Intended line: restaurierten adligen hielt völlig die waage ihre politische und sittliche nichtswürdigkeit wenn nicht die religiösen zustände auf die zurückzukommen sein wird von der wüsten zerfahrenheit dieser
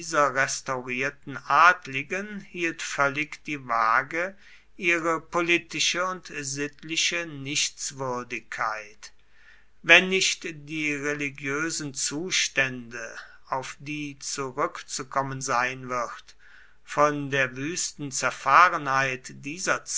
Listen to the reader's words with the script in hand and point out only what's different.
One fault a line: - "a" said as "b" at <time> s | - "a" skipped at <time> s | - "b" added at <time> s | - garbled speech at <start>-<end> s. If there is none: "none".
none